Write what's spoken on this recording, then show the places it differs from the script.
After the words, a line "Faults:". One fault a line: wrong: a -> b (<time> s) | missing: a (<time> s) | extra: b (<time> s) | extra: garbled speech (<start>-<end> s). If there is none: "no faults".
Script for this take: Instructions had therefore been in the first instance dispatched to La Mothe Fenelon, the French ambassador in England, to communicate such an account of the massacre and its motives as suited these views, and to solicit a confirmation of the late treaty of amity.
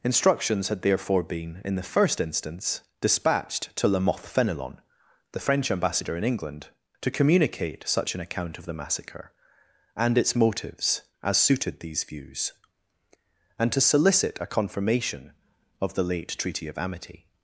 Instructions had therefore been in the first instance dispatched to La Mothe Fenelon, the French ambassador in England, to communicate such an account of the massacre and its motives as suited these views, and to solicit a confirmation of the late treaty of amity.
Faults:
no faults